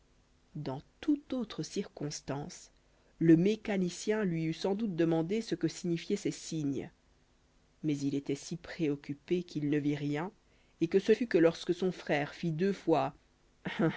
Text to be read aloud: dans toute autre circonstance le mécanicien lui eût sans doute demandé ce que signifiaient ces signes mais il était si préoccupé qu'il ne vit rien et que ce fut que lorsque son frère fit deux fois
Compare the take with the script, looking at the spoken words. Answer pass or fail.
pass